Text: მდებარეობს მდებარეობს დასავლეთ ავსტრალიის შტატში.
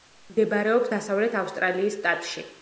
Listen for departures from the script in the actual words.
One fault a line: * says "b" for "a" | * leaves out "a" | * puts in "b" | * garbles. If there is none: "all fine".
* leaves out "მდებარეობს"